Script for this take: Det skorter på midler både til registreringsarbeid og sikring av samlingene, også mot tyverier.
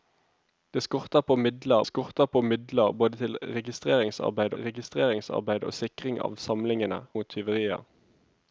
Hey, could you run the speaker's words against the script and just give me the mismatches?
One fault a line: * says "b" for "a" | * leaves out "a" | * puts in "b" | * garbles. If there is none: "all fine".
* puts in "skorter på midler"
* puts in "registreringsarbeid"
* leaves out "også"